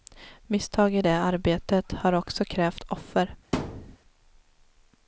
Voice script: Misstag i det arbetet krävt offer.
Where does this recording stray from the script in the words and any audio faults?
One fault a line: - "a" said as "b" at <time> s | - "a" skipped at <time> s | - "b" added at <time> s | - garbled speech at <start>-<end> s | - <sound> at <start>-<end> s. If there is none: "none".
- "har också" added at 1.9 s
- thud at 3.5-4.0 s